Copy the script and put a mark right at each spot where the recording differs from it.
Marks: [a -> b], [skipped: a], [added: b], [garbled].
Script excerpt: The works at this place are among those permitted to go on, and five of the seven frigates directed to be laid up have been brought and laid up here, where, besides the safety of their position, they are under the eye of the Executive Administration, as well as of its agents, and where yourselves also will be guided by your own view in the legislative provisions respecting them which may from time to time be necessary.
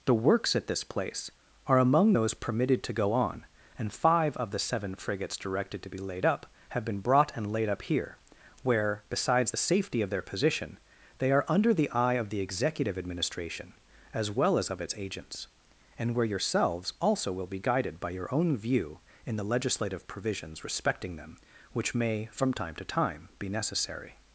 The works at this place are among those permitted to go on, and five of the seven frigates directed to be laid up have been brought and laid up here, where, besides the safety of their position, they are under the eye of the Executive Administration, as well as of its agents, and where yourselves also will be guided by your own view in the legislative provisions respecting them which may from time to time be necessary.